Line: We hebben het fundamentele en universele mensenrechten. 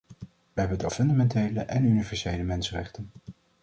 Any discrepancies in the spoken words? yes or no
no